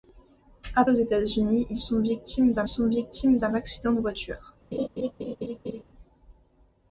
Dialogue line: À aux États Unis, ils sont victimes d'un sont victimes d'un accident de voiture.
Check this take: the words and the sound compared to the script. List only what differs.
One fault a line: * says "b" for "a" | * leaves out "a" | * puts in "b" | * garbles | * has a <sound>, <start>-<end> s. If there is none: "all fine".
* has a laugh, 4.7-5.8 s